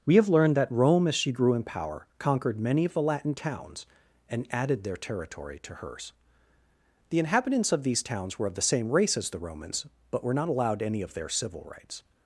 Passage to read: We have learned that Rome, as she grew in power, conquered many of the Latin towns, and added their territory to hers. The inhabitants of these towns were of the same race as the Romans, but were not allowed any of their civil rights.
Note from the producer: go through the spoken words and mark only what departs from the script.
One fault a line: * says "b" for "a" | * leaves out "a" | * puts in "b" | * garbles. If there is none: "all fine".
all fine